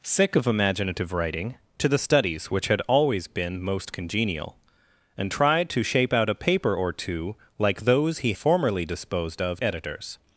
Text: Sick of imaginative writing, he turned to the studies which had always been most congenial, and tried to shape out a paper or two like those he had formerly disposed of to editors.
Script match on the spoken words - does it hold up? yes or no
no